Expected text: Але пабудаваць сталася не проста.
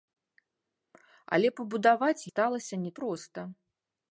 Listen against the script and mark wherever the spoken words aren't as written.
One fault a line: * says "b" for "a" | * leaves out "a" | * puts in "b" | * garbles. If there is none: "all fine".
all fine